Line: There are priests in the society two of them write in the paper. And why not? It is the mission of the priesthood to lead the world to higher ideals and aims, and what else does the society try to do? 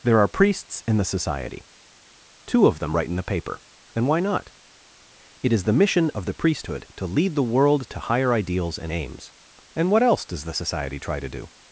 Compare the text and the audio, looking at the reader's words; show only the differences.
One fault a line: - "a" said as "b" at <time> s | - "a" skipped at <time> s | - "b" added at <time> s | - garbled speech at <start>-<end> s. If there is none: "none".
none